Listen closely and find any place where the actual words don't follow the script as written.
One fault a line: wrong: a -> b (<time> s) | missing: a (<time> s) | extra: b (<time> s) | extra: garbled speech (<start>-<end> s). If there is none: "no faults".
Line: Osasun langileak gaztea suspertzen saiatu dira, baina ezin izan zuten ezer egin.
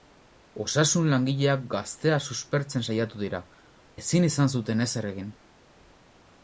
missing: baina (3.4 s)